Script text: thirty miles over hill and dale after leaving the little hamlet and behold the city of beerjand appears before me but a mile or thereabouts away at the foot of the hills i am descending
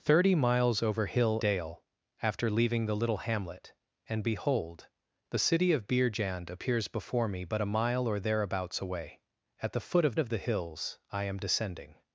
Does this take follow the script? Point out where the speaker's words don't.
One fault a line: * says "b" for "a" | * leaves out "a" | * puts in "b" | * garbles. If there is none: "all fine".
* leaves out "and"
* puts in "of"